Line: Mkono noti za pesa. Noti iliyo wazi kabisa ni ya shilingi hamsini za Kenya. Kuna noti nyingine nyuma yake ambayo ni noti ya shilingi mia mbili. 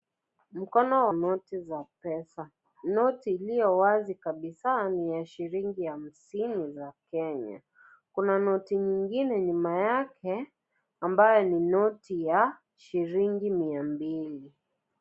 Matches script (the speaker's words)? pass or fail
pass